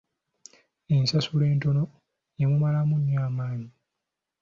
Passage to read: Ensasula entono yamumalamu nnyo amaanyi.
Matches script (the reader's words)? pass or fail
pass